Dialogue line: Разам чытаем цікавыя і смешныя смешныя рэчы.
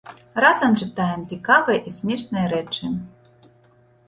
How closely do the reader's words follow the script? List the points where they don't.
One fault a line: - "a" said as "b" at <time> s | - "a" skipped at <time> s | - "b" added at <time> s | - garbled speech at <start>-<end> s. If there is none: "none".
- "смешныя" skipped at 2.5 s